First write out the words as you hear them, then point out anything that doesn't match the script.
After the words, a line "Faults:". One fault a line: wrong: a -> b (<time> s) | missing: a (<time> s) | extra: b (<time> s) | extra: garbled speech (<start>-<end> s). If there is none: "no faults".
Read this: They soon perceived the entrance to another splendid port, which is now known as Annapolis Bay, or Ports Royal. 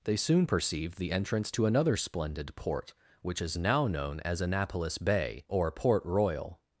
They soon perceived the entrance to another splendid port, which is now known as Annapolis Bay, or Port Royal.
Faults:
wrong: Ports -> Port (5.7 s)